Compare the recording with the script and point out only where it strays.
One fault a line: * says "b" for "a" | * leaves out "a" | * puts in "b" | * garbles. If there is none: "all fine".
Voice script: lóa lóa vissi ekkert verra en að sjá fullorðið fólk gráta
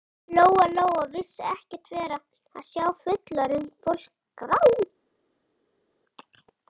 all fine